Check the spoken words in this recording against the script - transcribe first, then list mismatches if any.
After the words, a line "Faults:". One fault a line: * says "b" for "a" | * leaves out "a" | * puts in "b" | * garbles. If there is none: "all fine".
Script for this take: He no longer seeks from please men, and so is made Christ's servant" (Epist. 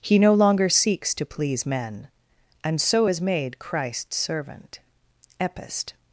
He no longer seeks to please men, and so is made Christ's servant" (Epist.
Faults:
* says "to" for "from"